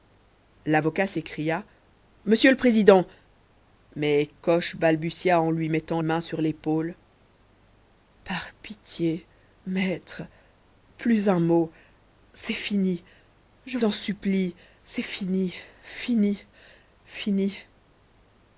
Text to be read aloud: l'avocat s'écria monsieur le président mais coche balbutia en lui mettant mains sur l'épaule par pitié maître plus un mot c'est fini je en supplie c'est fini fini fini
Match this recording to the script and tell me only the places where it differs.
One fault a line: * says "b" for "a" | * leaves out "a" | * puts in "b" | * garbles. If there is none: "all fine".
all fine